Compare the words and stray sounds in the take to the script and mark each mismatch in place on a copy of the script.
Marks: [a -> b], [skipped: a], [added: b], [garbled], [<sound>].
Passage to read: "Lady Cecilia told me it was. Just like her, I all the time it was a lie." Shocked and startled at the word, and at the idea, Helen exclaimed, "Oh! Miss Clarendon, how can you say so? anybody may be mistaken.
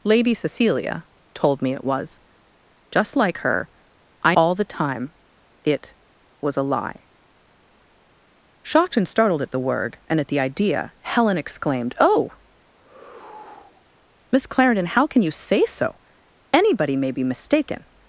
"Lady Cecilia told me it was. Just like her, I all the time it was a lie." Shocked and startled at the word, and at the idea, Helen exclaimed, "Oh! [sigh] Miss Clarendon, how can you say so? anybody may be mistaken.